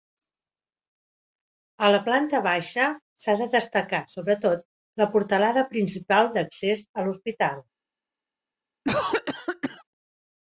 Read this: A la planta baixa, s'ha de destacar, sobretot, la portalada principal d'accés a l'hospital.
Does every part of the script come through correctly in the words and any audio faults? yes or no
no